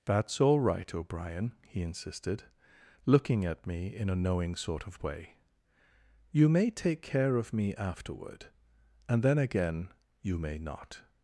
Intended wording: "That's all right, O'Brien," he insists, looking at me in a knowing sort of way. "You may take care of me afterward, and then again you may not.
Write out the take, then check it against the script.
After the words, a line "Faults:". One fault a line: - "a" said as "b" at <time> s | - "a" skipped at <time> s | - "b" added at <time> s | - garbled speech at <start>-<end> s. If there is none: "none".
"That's all right, O'Brien," he insisted, looking at me in a knowing sort of way. "You may take care of me afterward, and then again you may not.
Faults:
- "insists" said as "insisted" at 1.8 s